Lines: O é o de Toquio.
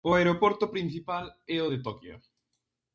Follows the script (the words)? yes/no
no